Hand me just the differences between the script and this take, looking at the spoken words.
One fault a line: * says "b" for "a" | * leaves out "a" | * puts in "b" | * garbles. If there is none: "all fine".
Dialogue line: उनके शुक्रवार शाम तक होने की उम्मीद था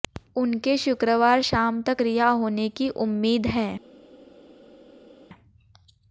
* puts in "रिहा"
* says "है" for "था"